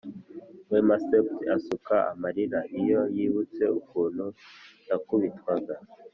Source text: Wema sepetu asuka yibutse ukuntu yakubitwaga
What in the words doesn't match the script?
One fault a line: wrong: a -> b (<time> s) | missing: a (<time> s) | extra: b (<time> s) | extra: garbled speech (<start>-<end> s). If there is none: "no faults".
extra: amarira iyo (2.1 s)